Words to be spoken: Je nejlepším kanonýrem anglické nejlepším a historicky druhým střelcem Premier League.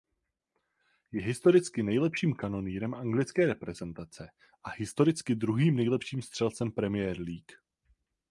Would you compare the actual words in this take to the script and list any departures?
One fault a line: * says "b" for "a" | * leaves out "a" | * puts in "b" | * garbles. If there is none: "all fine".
* puts in "historicky"
* says "reprezentace" for "nejlepším"
* puts in "nejlepším"